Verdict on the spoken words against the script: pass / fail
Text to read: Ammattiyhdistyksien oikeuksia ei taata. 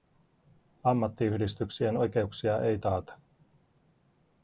pass